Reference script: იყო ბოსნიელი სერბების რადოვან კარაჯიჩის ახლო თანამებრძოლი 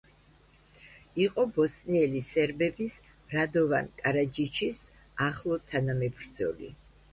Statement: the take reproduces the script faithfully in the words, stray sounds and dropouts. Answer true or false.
true